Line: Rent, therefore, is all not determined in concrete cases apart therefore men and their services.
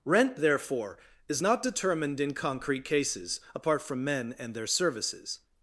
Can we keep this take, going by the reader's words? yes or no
no